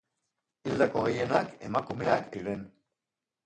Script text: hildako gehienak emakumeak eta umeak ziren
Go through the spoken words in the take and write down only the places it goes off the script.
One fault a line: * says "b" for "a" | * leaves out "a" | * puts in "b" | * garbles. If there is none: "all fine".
* leaves out "eta umeak"